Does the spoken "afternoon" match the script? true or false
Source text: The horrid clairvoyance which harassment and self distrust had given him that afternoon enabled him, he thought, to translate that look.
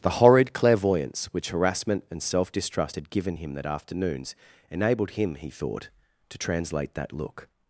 false